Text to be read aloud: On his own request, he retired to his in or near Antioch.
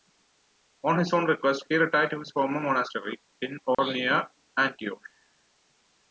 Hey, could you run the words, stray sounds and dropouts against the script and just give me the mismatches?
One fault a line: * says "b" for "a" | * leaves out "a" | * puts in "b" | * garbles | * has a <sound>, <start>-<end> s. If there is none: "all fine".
* puts in "former monastery"
* has a dropout, 3.7-3.8 s